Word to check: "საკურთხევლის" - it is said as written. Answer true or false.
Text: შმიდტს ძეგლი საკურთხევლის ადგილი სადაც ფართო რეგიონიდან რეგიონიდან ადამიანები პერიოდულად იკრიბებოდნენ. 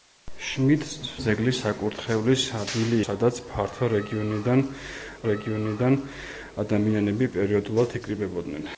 true